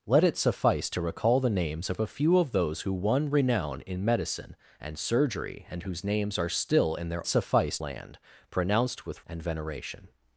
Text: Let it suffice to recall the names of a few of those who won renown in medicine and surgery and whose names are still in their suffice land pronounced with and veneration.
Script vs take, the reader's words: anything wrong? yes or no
no